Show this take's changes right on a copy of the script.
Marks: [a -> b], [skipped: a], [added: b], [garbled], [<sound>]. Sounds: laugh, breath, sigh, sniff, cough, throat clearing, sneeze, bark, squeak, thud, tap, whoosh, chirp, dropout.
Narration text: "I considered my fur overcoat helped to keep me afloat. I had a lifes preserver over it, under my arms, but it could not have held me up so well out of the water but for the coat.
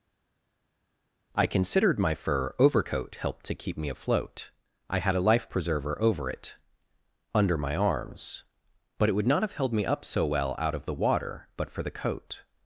"I considered my fur overcoat helped to keep me afloat. I had a [lifes -> life] preserver over it, under my arms, but it [could -> would] not have held me up so well out of the water but for the coat.